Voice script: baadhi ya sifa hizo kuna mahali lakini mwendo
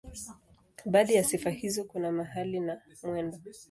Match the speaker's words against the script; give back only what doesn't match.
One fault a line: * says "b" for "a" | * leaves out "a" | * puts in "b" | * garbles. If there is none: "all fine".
* says "na" for "lakini"